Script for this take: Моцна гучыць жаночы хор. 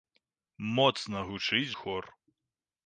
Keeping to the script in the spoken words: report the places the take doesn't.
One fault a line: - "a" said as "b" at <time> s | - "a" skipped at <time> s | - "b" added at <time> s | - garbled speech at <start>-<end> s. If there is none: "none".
- "жаночы" skipped at 1.8 s